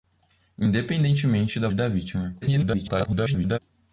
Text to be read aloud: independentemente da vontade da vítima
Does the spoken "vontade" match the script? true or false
false